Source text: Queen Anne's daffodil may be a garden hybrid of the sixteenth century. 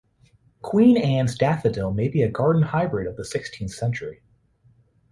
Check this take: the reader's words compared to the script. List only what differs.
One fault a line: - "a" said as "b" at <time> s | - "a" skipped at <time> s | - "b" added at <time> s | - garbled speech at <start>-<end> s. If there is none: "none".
none